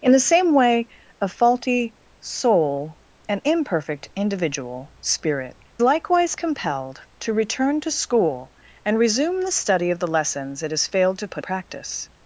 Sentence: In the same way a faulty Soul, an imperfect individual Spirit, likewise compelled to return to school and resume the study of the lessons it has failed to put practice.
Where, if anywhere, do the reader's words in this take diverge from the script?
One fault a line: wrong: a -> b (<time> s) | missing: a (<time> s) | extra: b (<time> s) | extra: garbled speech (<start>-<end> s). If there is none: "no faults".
no faults